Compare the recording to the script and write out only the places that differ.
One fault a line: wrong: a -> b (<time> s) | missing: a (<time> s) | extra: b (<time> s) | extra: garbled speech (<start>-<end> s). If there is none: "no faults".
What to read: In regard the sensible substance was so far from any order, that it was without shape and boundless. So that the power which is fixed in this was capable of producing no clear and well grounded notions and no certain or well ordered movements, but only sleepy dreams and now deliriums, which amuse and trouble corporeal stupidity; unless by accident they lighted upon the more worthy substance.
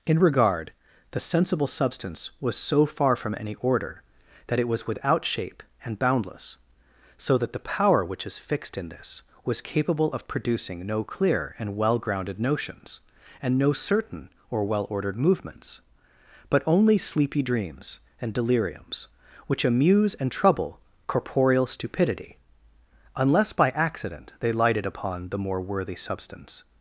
missing: now (18.3 s)